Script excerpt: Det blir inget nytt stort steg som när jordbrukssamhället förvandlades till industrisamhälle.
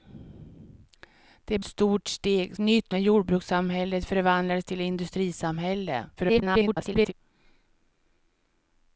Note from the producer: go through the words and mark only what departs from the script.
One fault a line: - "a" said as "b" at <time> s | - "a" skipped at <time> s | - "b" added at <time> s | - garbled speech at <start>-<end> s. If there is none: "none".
- "blir inget nytt" skipped at 1.6 s
- "som" said as "nytt" at 2.6 s
- garbled speech at 6.2-7.1 s